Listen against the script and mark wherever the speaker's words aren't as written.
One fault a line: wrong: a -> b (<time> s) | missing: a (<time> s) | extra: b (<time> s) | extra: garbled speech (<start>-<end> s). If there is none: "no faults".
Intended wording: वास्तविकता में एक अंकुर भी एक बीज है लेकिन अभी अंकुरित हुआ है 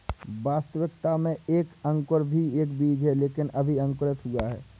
no faults